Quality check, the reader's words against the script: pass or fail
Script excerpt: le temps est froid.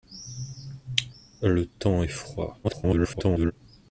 fail